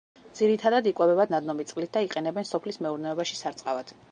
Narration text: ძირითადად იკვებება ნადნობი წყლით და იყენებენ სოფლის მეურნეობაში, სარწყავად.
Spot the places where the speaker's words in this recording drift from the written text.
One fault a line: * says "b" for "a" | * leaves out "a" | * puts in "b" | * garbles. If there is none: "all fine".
all fine